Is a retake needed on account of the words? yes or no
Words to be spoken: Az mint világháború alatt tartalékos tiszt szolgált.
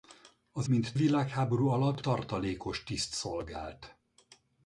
no